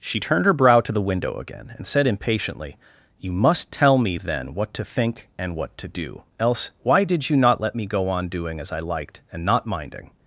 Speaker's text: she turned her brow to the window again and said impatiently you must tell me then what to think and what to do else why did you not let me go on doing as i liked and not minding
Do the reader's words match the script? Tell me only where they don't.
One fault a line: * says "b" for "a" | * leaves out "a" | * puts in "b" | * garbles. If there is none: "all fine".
all fine